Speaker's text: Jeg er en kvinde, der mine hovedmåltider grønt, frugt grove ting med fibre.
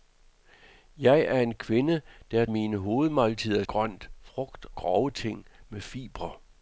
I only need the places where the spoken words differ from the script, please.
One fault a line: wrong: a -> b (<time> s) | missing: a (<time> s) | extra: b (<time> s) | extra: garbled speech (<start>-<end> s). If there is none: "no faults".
no faults